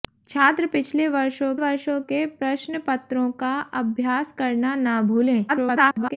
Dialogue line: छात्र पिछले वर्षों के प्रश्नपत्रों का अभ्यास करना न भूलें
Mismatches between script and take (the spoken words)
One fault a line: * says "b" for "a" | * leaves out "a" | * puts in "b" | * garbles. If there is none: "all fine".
* puts in "वर्षों"
* garbles